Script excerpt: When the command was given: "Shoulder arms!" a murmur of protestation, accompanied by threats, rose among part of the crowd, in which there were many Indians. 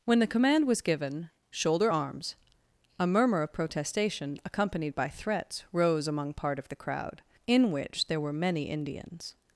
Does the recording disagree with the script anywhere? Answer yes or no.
no